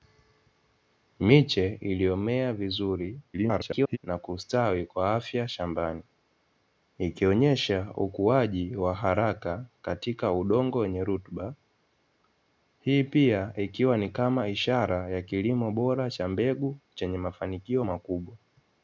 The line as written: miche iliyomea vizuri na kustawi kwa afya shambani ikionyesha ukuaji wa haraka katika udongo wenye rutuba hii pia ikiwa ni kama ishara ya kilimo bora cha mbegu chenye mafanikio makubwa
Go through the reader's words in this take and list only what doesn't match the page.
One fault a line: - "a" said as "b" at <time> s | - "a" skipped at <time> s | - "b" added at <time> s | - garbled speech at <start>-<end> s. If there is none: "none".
- garbled speech at 3.3-4.0 s